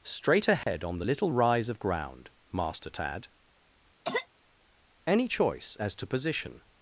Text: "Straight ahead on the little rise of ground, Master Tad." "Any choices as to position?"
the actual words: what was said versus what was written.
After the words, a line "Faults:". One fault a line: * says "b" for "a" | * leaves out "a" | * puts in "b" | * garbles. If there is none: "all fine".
"Straight ahead on the little rise of ground, Master Tad." "Any choice as to position?"
Faults:
* says "choice" for "choices"